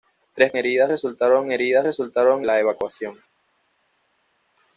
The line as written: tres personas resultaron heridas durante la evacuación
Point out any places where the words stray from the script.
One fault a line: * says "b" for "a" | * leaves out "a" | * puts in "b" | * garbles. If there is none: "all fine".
* says "heridas" for "personas"
* says "resultaron" for "durante"